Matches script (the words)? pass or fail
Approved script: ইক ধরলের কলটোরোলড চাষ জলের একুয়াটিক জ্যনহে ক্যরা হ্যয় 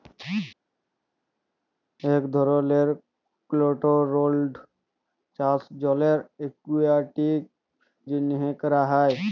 pass